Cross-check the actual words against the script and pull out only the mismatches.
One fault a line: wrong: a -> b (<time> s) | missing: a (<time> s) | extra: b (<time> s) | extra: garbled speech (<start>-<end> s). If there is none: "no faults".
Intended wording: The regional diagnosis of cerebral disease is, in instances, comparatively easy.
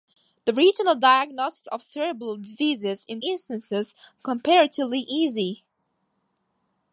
no faults